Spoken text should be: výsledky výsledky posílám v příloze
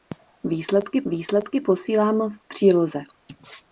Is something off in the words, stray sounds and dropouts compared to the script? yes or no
no